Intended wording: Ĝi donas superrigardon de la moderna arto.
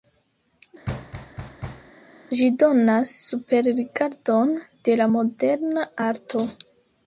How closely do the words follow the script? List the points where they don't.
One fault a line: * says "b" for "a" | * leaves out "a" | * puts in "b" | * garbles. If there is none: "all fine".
all fine